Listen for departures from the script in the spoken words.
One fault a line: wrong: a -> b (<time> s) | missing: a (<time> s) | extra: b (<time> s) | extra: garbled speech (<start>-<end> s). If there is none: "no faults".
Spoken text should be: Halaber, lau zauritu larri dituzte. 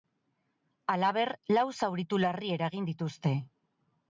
extra: eragin (2.6 s)